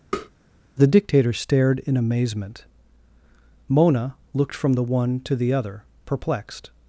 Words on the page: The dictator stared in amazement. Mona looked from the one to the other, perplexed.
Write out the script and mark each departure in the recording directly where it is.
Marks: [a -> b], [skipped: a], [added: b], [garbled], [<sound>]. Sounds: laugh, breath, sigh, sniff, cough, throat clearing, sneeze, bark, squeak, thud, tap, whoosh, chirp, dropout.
[tap] The dictator stared in amazement. Mona looked from the one to the other, perplexed.